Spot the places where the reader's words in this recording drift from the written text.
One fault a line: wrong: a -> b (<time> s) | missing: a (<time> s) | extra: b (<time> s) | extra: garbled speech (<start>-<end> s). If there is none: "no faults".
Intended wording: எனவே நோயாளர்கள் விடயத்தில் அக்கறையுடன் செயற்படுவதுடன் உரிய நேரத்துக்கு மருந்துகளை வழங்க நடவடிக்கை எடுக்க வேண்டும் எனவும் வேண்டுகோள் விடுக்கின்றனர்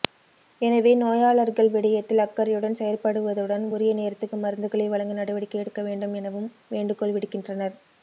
no faults